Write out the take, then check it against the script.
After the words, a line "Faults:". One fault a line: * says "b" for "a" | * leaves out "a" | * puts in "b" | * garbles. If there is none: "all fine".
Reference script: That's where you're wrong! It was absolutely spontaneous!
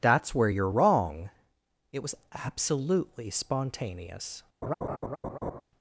That's where you're wrong! It was absolutely spontaneous!
Faults:
all fine